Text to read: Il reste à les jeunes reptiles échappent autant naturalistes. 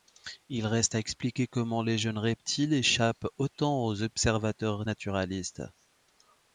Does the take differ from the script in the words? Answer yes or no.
yes